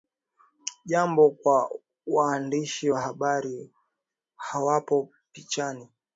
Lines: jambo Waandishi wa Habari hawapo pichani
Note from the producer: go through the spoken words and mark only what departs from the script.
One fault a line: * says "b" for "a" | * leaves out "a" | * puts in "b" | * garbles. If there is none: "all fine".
* puts in "kwa"